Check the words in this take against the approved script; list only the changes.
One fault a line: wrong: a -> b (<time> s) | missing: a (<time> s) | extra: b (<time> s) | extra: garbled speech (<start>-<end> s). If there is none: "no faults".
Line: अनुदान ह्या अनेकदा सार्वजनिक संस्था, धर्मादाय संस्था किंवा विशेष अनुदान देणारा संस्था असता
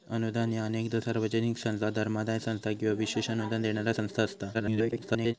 extra: garbled speech (4.5-5.3 s)